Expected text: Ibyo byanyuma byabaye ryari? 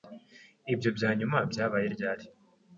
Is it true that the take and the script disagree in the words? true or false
false